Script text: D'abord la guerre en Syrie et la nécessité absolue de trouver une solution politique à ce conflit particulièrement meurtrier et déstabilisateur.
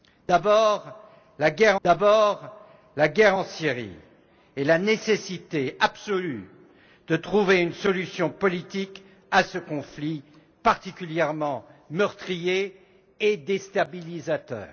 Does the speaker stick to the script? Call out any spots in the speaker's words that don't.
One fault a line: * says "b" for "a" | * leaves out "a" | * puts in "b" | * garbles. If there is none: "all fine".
* puts in "d'abord la guerre"